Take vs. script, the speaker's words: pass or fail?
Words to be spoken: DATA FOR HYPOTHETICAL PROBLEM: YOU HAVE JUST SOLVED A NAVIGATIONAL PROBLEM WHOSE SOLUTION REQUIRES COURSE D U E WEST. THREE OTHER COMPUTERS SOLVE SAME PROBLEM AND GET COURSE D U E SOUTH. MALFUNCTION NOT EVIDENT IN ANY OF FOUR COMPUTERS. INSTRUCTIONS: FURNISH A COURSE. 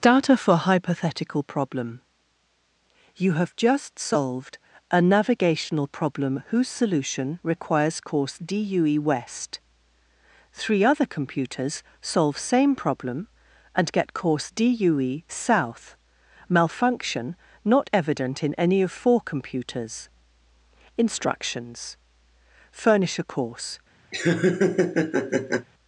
pass